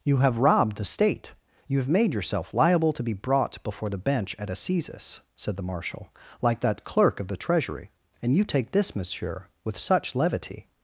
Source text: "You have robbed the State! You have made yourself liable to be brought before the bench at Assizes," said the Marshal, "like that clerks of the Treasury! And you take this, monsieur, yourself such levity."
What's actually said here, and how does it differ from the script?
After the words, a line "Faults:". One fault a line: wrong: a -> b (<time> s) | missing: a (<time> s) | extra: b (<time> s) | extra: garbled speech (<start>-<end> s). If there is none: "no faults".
"You have robbed the State! You have made yourself liable to be brought before the bench at Assizes," said the Marshal, "like that clerk of the Treasury! And you take this, monsieur, with such levity."
Faults:
wrong: clerks -> clerk (6.8 s)
wrong: yourself -> with (9.6 s)